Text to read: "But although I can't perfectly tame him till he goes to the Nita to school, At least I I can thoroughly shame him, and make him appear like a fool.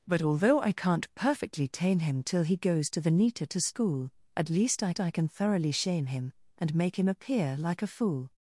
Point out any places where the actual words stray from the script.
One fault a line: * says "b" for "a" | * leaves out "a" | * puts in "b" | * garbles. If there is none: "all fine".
all fine